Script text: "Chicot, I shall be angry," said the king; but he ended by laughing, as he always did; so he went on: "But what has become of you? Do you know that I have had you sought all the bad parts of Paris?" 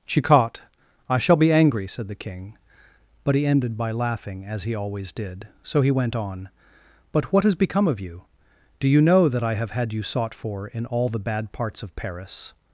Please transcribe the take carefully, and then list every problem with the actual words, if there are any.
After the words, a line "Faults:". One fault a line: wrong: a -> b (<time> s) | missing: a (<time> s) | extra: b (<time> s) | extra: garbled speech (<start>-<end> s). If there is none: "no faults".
"Chicot, I shall be angry," said the king; but he ended by laughing, as he always did; so he went on: "But what has become of you? Do you know that I have had you sought for in all the bad parts of Paris?"
Faults:
extra: for in (10.3 s)